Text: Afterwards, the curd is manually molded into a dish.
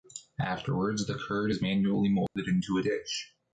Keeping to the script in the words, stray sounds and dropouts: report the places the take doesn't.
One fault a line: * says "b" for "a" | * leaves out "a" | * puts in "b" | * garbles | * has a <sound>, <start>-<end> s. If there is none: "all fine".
* has a dropout, 2.3-2.4 s